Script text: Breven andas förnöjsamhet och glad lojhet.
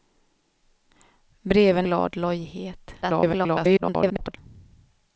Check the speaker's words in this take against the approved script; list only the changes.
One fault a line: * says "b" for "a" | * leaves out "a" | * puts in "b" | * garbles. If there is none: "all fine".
* leaves out "andas förnöjsamhet och"
* garbles